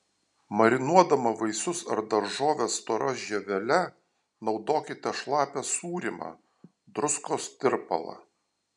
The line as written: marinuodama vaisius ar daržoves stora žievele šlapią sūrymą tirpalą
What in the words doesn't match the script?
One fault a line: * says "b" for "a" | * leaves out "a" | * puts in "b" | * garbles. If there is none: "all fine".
* puts in "naudokite"
* puts in "druskos"